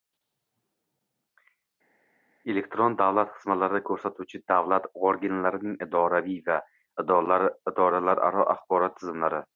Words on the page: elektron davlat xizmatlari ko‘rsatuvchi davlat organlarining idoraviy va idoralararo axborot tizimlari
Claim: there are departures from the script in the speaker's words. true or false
false